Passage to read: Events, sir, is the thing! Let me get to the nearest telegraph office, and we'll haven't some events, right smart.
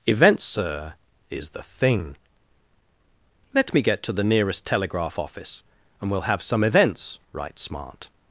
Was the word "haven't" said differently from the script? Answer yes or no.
yes